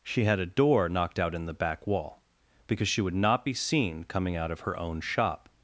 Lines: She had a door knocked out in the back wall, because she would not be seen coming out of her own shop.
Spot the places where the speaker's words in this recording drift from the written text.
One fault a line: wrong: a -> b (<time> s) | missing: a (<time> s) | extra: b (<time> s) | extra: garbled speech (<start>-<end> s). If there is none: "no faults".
no faults